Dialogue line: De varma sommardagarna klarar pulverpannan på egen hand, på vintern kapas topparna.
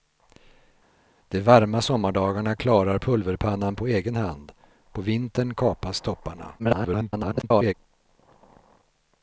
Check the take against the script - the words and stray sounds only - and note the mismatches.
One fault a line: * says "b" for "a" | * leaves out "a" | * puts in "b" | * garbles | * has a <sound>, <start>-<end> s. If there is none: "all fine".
* garbles